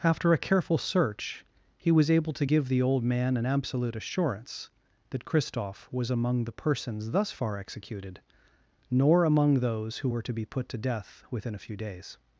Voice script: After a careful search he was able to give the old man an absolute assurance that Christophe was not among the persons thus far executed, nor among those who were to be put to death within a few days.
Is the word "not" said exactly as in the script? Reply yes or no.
no